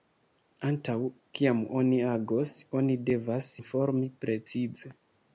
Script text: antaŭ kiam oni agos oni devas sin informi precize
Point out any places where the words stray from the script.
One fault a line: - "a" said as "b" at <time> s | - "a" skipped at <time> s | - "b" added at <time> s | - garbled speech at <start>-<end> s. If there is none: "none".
- "sin" skipped at 3.5 s